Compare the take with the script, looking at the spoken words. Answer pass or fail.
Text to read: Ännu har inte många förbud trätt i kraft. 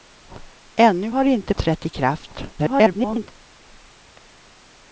fail